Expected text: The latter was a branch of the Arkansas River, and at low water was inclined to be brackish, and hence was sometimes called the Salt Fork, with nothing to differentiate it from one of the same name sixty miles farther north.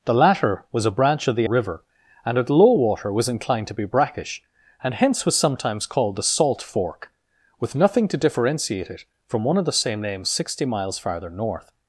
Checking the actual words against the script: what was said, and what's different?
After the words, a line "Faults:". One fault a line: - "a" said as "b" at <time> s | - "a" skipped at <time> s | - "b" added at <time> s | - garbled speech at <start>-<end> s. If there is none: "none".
The latter was a branch of the River, and at low water was inclined to be brackish, and hence was sometimes called the Salt Fork, with nothing to differentiate it from one of the same name sixty miles farther north.
Faults:
- "Arkansas" skipped at 1.5 s